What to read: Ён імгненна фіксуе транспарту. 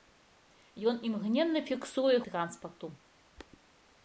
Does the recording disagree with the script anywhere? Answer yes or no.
no